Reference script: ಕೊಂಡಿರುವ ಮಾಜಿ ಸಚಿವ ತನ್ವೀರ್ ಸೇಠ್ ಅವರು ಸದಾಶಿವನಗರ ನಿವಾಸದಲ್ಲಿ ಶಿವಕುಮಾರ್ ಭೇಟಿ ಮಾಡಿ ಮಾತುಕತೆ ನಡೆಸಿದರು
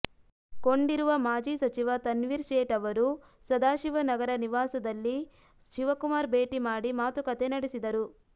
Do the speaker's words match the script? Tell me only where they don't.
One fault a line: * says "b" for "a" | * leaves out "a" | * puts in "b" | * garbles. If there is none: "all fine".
all fine